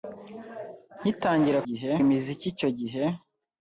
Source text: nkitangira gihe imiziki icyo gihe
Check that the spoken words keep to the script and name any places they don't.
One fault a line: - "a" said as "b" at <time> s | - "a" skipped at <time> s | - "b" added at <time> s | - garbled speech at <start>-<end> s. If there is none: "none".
none